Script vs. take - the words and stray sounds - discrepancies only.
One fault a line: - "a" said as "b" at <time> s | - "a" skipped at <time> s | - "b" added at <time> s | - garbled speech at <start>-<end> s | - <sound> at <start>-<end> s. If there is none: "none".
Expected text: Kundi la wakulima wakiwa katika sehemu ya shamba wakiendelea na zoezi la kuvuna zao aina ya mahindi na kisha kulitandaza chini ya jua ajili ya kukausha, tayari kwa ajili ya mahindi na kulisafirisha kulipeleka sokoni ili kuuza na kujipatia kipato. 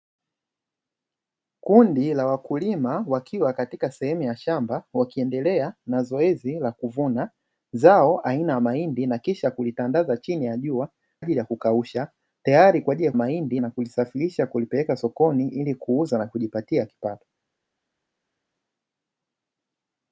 none